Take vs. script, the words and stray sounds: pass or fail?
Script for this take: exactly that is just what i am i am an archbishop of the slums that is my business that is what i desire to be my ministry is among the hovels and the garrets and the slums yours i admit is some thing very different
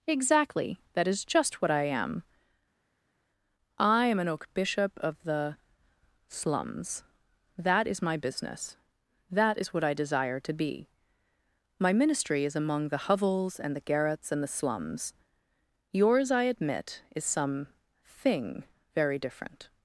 fail